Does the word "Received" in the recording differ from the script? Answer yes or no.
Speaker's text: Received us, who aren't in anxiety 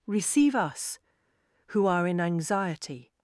yes